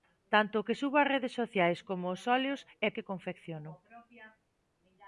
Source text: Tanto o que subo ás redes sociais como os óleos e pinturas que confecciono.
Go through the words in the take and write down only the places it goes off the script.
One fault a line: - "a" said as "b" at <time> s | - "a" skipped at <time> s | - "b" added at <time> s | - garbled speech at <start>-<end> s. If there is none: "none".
- "pinturas" skipped at 2.9 s